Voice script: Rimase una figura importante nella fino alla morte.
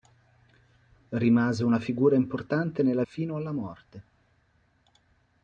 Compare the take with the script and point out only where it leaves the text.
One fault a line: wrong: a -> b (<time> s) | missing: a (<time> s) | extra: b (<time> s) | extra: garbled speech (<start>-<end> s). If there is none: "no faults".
no faults